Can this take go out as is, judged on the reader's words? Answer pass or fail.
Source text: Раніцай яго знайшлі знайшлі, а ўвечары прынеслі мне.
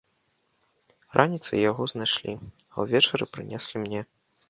fail